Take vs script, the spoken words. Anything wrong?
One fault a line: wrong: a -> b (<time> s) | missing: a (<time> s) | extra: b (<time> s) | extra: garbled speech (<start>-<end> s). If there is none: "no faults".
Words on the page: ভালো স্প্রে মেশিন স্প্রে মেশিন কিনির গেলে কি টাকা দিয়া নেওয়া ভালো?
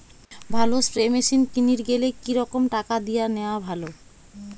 missing: স্প্রে মেশিন (1.4 s)
extra: রকম (2.3 s)